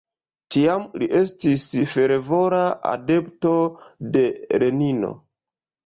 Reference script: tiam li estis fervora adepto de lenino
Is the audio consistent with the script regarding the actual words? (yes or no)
yes